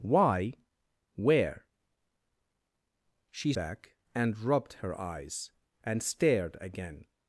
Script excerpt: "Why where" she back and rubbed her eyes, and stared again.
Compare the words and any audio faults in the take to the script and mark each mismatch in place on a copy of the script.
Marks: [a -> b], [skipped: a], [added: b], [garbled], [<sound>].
"Why where" she back and rubbed her eyes, and stared again.